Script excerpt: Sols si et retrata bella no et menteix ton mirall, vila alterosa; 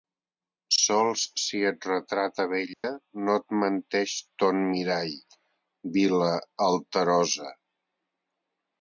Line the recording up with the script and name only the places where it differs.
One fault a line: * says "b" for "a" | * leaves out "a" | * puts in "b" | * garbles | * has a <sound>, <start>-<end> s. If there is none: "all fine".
* has a dropout, 2.7-2.8 s